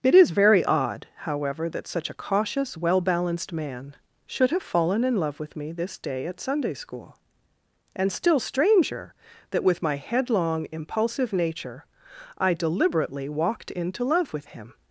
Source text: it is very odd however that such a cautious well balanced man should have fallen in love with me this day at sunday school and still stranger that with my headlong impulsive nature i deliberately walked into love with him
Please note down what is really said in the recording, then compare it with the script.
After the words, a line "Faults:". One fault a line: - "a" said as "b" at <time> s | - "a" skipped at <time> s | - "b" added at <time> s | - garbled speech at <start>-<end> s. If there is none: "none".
it is very odd however that such a cautious well balanced man should have fallen in love with me this day at sunday school and still stranger that with my headlong impulsive nature i deliberately walked into love with him
Faults:
none